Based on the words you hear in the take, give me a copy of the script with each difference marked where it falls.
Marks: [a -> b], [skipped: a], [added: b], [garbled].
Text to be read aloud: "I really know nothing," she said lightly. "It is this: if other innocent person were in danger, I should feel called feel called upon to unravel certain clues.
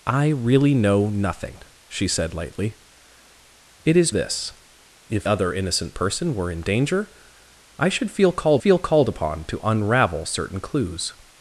"I really know nothing," she said lightly. "It is this: if other innocent person were in danger, I should feel called feel called upon to unravel certain clues.